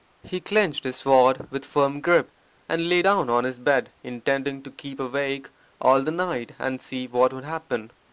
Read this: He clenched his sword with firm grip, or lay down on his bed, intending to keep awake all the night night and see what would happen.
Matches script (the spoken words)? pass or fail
fail